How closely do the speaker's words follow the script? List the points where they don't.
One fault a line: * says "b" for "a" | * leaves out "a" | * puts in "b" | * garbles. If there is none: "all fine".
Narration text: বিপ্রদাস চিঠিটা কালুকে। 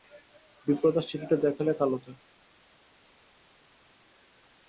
* puts in "দেখালে"